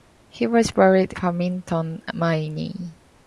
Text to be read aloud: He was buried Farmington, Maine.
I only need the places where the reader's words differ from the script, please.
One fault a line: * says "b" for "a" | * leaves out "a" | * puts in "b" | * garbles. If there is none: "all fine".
all fine